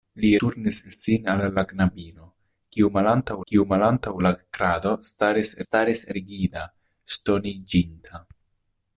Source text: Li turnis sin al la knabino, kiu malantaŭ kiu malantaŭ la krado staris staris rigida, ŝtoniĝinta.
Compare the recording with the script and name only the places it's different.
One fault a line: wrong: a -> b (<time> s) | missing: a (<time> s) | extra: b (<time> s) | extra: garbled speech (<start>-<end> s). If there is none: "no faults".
no faults